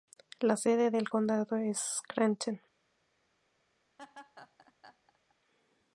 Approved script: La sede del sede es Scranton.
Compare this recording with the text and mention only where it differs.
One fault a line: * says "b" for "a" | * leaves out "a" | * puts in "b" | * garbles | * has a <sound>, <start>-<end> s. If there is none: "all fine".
* says "condado" for "sede"
* has a laugh, 4.0-5.4 s